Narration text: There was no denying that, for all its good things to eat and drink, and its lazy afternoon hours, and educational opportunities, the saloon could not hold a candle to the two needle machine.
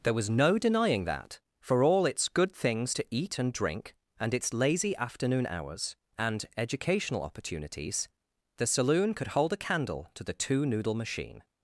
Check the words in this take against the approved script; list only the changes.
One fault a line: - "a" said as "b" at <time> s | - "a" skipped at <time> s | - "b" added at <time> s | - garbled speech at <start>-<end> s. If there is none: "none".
- "not" skipped at 9.3 s
- "needle" said as "noodle" at 10.7 s